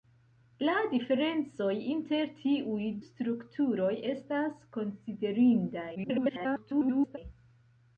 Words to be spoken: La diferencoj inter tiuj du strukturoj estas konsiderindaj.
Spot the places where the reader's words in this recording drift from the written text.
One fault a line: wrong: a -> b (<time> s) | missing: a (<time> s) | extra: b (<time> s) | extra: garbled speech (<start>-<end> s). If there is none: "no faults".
missing: du (2.9 s)
extra: garbled speech (6.0-7.2 s)